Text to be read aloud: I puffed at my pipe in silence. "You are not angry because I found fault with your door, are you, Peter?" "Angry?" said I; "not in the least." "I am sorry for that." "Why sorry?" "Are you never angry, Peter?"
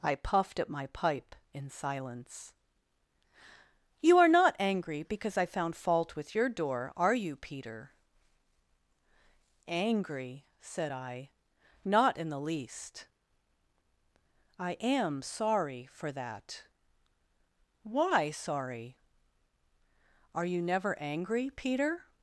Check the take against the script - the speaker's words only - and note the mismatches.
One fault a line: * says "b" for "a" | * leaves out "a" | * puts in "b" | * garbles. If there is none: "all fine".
all fine